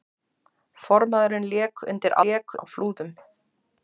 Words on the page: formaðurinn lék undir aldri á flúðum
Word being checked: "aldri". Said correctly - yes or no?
no